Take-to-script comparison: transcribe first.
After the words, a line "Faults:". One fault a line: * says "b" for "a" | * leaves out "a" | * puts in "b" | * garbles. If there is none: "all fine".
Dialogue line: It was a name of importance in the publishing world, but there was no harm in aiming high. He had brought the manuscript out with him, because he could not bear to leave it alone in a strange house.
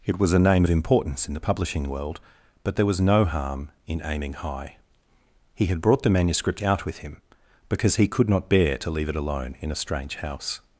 It was a name of importance in the publishing world, but there was no harm in aiming high. He had brought the manuscript out with him, because he could not bear to leave it alone in a strange house.
Faults:
all fine